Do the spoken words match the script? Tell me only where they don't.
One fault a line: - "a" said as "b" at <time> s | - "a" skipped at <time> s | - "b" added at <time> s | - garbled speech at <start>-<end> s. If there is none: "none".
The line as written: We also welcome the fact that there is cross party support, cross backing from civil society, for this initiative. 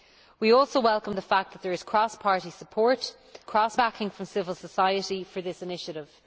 none